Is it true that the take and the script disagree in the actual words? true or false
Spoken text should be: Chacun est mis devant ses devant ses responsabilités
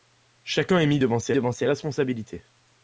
false